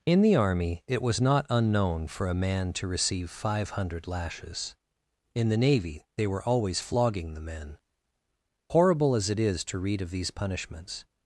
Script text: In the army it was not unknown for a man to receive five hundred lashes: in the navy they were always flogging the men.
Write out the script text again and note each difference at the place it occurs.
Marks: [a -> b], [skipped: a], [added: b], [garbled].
In the army it was not unknown for a man to receive five hundred lashes: in the navy they were always flogging the men. [added: Horrible as it is to read of these punishments]